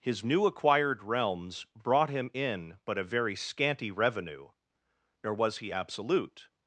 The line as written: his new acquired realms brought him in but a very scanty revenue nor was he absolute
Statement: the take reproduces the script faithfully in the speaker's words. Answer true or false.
true